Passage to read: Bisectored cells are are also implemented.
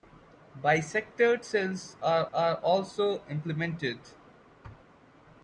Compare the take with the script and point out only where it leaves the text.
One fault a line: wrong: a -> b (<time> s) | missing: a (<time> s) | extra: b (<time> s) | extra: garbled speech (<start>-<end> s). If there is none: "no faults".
no faults